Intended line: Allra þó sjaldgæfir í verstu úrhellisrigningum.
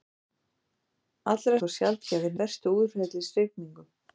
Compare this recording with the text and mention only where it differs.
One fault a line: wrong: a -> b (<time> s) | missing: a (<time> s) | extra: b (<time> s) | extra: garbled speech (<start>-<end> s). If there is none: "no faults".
no faults